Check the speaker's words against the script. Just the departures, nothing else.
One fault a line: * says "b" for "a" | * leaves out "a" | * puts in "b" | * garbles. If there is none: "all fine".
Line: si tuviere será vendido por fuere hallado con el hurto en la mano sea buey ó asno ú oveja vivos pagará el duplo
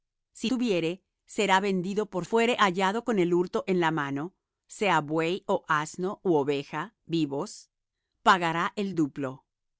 all fine